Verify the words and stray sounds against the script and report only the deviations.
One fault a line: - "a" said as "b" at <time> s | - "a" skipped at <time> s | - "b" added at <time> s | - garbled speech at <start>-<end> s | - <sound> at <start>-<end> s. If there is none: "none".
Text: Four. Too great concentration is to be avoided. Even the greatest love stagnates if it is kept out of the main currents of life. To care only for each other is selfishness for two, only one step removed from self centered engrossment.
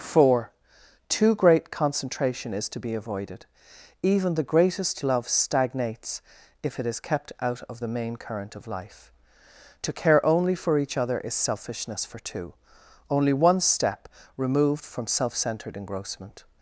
- "currents" said as "current" at 8.1 s